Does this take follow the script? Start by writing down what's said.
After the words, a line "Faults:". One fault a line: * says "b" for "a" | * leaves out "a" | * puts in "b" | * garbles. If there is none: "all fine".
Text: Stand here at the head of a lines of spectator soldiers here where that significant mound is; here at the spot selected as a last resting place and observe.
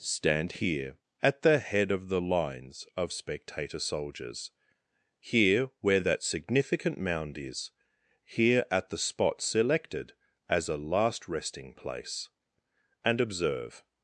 Stand here at the head of the lines of spectator soldiers here where that significant mound is; here at the spot selected as a last resting place and observe.
Faults:
* says "the" for "a"